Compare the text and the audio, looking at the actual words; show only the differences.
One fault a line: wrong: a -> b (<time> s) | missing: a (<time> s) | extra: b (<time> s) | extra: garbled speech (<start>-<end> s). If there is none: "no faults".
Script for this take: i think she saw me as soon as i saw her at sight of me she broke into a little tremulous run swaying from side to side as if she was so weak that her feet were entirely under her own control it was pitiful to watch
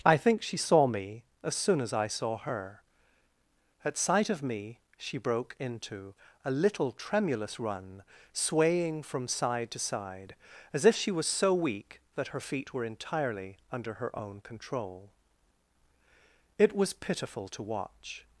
no faults